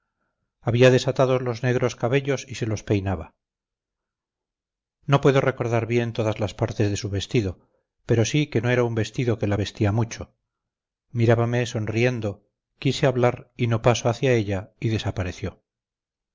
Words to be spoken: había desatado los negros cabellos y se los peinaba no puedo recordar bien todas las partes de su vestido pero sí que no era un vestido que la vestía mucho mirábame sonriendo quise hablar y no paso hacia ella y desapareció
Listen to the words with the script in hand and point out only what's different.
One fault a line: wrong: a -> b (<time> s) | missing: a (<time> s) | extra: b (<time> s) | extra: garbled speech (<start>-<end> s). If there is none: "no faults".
no faults